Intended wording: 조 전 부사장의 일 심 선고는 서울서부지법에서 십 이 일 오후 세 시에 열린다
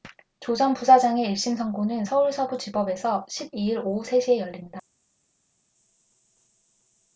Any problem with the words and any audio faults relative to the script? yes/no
no